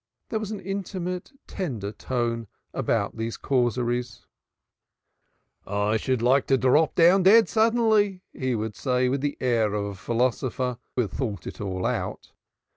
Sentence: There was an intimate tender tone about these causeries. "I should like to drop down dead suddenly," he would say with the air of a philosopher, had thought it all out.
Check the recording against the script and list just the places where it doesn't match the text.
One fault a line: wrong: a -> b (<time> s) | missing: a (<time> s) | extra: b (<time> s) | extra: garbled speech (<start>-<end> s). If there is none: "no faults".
no faults